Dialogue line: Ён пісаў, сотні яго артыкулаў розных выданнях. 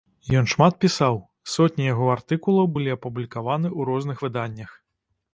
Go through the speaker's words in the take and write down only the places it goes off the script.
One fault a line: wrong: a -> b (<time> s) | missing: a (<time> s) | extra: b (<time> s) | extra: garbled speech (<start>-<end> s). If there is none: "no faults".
extra: шмат (0.5 s)
extra: былі апублікаваны ў (2.8 s)